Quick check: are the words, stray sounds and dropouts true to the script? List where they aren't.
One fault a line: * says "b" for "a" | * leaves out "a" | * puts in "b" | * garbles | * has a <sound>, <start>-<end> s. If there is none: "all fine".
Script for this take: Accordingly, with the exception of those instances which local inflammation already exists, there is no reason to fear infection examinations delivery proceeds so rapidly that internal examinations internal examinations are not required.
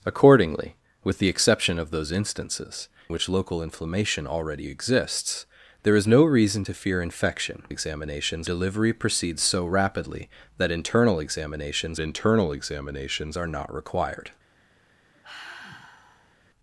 * has a sigh, 15.1-16.4 s